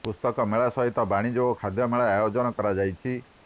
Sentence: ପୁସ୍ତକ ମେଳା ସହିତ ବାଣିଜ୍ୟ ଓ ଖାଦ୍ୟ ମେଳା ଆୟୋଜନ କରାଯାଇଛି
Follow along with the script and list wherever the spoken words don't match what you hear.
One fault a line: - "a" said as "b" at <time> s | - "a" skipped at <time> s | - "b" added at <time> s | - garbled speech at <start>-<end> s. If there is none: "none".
none